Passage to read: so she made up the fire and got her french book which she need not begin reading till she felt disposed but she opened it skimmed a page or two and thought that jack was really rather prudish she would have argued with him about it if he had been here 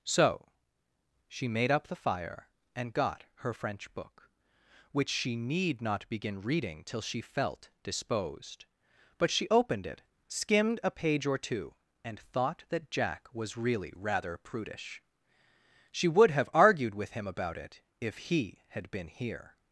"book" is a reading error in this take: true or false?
false